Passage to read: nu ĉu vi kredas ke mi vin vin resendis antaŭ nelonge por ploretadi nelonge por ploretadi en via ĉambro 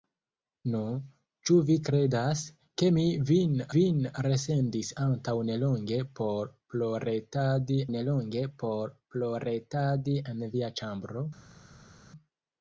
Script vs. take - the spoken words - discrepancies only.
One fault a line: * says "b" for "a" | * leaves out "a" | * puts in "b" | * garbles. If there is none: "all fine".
all fine